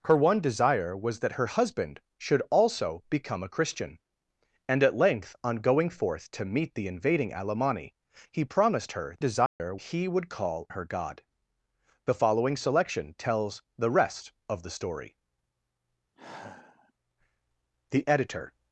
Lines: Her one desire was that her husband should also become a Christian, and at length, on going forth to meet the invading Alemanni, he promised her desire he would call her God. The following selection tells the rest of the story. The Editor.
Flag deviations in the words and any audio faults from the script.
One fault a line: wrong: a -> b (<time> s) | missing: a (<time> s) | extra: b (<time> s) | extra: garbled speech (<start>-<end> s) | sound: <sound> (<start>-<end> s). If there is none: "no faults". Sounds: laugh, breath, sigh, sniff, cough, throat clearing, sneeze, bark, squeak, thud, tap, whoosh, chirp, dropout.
sound: dropout (9.5-9.6 s)
sound: sigh (16.2-16.9 s)